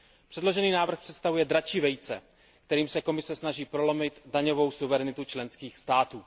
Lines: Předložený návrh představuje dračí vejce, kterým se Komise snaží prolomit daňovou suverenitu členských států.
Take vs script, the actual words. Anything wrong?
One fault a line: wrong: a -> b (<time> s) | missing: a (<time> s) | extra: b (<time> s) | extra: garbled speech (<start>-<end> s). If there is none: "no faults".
no faults